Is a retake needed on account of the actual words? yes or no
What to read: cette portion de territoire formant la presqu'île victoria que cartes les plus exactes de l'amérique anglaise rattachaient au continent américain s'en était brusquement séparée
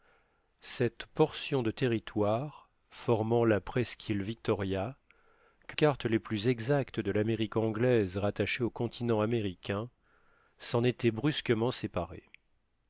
no